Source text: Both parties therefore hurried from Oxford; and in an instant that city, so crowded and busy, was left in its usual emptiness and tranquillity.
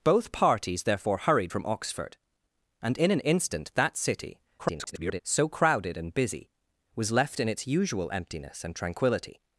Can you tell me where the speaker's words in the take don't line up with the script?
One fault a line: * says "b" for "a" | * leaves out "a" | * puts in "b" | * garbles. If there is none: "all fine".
* garbles